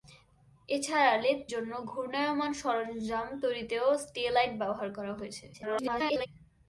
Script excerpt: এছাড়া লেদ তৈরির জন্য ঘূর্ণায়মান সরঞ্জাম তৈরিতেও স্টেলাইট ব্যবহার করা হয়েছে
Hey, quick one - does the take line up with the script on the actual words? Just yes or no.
no